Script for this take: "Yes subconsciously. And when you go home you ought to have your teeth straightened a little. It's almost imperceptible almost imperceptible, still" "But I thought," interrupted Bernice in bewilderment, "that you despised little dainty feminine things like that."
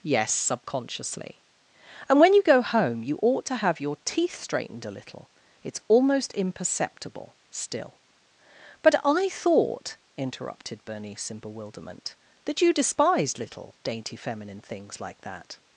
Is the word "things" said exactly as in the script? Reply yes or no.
yes